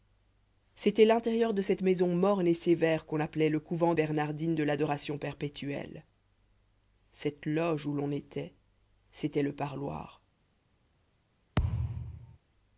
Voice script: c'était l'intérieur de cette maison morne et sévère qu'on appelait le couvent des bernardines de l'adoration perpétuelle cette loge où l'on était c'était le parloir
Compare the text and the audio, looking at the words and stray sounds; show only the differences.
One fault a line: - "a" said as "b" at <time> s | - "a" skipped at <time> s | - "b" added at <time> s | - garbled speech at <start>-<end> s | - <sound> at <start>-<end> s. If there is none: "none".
- "des" skipped at 3.9 s
- thud at 11.6-12.4 s